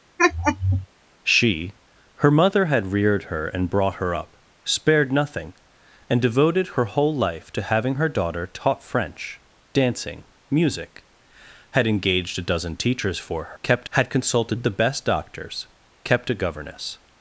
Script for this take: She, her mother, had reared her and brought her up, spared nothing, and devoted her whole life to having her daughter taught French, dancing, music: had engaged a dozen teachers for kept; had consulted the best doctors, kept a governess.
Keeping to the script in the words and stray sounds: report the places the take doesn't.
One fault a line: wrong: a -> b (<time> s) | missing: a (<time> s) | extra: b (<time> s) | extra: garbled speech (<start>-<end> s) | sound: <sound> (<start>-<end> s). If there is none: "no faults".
sound: laugh (0.2-0.9 s)